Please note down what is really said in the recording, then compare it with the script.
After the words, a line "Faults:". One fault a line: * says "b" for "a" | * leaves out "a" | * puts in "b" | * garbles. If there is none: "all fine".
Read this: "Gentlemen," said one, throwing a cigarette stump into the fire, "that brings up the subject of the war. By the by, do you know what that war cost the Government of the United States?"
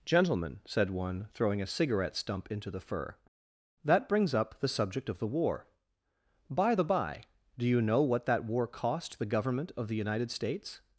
"Gentlemen," said one, throwing a cigarette stump into the fur, "that brings up the subject of the war. By the by, do you know what that war cost the Government of the United States?"
Faults:
* says "fur" for "fire"